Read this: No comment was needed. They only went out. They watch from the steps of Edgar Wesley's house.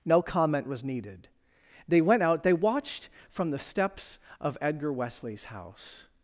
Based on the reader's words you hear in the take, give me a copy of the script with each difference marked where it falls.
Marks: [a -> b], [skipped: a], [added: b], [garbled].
No comment was needed. They [skipped: only] went out. They [watch -> watched] from the steps of Edgar Wesley's house.